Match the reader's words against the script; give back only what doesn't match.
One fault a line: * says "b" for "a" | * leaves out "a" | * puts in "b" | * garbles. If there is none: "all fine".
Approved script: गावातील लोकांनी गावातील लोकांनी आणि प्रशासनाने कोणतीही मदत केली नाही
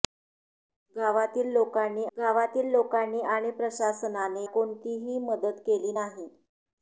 all fine